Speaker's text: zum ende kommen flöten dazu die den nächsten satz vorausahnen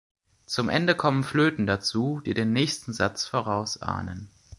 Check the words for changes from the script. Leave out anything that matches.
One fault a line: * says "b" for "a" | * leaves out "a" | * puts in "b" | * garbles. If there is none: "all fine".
all fine